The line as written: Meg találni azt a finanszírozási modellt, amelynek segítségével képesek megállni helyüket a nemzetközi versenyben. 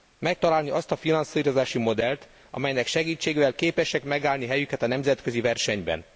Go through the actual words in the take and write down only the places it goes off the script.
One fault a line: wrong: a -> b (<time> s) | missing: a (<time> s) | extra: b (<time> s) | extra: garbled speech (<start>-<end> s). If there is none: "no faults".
no faults